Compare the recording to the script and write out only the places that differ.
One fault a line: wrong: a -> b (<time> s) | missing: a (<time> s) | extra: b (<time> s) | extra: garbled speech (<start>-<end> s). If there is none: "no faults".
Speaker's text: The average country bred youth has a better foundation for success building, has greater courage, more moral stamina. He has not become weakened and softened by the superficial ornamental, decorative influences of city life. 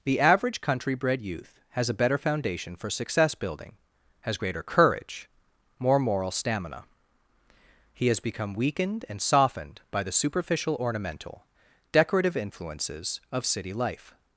missing: not (8.2 s)